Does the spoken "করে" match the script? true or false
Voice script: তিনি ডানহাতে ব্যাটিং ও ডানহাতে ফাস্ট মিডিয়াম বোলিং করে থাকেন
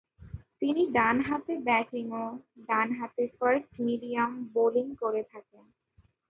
true